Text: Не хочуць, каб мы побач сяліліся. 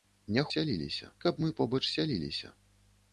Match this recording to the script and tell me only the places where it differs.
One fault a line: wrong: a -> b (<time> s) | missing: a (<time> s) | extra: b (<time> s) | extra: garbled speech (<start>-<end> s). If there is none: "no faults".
wrong: хочуць -> сяліліся (0.5 s)